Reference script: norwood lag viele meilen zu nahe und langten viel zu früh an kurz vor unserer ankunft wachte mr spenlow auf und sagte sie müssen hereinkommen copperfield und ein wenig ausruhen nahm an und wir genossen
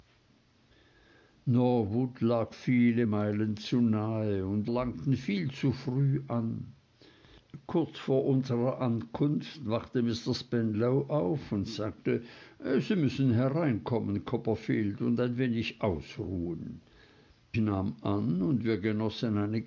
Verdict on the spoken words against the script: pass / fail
pass